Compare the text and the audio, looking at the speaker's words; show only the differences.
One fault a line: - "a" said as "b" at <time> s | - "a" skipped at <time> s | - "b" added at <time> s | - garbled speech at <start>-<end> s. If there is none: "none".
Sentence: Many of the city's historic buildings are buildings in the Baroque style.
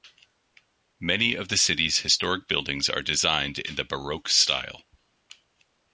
- "buildings" said as "designed" at 3.0 s